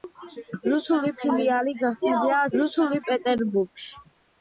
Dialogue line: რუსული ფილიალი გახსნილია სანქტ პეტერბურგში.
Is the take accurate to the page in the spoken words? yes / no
no